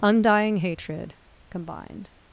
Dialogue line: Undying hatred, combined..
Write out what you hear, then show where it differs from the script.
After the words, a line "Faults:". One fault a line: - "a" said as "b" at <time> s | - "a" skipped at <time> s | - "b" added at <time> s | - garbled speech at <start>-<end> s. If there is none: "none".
Undying hatred, combined..
Faults:
none